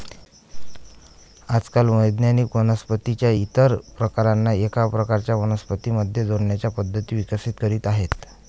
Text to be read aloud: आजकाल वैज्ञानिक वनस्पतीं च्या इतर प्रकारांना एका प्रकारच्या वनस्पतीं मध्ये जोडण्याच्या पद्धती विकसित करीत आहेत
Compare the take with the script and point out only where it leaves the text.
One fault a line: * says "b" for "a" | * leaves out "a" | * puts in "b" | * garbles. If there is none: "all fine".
all fine